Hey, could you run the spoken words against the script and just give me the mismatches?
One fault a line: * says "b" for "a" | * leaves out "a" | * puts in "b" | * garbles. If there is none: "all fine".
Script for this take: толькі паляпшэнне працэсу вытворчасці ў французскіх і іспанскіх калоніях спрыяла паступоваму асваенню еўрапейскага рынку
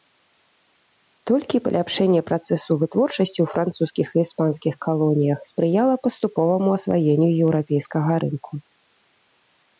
all fine